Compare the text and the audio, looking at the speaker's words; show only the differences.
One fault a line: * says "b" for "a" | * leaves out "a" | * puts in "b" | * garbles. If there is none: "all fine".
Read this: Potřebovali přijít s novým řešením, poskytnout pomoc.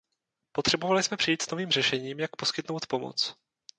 * puts in "jsme"
* puts in "jak"